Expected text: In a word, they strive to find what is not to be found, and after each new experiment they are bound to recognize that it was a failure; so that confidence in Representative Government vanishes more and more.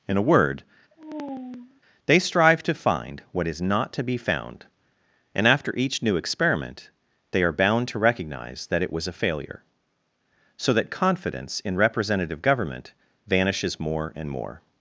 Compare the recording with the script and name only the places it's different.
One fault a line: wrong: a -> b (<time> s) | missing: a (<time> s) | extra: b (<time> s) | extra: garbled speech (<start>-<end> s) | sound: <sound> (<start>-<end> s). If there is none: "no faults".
sound: sigh (0.9-1.8 s)